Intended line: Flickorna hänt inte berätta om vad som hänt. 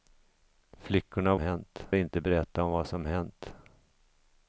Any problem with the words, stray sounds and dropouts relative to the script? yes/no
no